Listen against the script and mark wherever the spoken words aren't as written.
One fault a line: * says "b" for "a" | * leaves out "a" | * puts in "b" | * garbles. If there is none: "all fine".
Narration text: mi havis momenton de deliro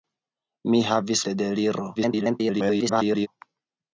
* leaves out "momenton"
* garbles